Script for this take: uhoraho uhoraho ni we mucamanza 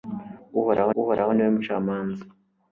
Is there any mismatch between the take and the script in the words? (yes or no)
no